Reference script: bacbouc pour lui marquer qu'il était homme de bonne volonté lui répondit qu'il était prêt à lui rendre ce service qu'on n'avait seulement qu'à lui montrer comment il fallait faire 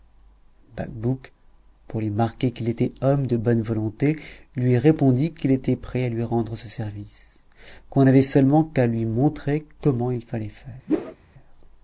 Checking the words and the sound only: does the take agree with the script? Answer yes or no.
no